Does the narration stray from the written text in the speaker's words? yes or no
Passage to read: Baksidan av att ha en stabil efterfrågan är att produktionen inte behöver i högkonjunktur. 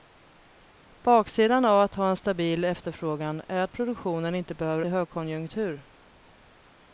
no